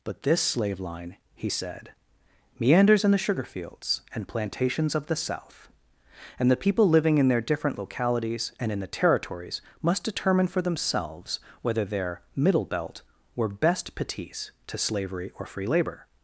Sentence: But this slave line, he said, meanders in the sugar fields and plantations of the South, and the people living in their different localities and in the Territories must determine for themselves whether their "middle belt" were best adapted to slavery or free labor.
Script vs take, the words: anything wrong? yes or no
yes